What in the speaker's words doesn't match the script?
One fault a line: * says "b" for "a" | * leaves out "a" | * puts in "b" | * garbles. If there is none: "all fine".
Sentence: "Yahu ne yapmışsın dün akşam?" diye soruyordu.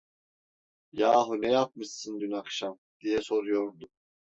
all fine